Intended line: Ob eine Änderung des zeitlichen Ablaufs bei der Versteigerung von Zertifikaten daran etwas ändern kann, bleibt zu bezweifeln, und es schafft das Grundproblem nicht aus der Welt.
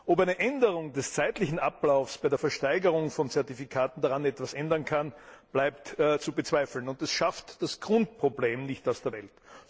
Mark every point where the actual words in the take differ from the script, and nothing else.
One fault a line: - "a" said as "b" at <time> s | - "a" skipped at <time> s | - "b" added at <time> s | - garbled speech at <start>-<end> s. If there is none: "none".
none